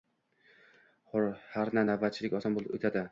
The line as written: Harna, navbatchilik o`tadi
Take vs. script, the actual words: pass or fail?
fail